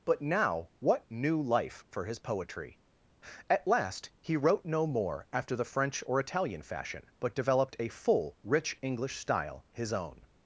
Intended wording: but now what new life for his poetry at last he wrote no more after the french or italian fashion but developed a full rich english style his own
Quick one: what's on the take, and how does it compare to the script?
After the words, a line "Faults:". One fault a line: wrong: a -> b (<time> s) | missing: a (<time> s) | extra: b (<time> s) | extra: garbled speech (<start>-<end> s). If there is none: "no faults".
but now what new life for his poetry at last he wrote no more after the french or italian fashion but developed a full rich english style his own
Faults:
no faults